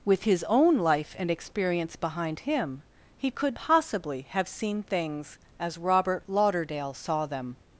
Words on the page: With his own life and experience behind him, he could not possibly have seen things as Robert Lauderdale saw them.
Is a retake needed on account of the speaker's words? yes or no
yes